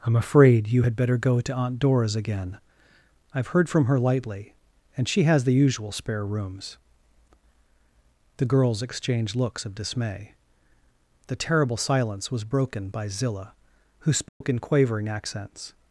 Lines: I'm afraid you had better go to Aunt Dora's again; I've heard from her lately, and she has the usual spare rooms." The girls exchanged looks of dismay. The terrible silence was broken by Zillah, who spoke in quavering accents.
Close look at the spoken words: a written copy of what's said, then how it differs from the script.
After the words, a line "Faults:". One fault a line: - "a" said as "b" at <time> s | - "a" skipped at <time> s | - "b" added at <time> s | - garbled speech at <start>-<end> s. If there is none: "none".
I'm afraid you had better go to Aunt Dora's again; I've heard from her lightly, and she has the usual spare rooms." The girls exchanged looks of dismay. The terrible silence was broken by Zillah, who spoke in quavering accents.
Faults:
- "lately" said as "lightly" at 4.0 s